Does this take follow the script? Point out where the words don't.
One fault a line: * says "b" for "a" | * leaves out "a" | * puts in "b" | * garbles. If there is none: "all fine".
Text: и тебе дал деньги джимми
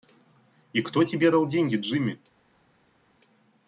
* puts in "кто"